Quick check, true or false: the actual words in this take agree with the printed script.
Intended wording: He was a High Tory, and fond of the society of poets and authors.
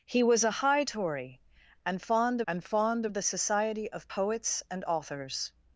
false